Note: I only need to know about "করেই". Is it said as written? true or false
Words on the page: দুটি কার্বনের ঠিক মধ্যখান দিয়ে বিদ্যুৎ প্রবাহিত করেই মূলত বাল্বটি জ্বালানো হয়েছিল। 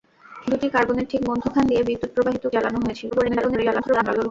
false